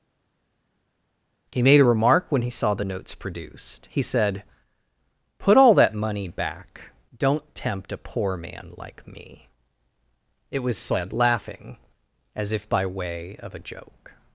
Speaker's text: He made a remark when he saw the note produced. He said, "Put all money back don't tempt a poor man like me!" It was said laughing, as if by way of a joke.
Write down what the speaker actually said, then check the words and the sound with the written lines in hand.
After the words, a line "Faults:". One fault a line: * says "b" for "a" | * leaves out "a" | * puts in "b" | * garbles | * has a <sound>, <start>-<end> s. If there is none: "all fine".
He made a remark when he saw the notes produced. He said, "Put all that money back don't tempt a poor man like me!" It was said laughing, as if by way of a joke.
Faults:
* says "notes" for "note"
* puts in "that"